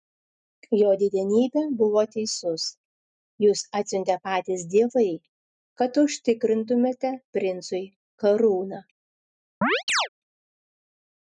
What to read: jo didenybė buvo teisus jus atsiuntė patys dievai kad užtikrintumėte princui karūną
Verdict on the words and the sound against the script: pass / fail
fail